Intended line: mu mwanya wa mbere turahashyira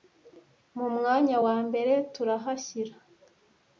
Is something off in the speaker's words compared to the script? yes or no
no